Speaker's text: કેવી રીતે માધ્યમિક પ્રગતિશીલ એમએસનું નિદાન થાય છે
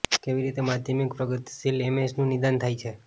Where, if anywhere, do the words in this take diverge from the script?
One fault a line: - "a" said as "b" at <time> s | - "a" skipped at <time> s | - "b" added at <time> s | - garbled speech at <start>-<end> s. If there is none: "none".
none